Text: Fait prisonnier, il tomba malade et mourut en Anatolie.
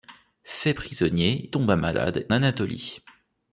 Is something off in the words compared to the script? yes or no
yes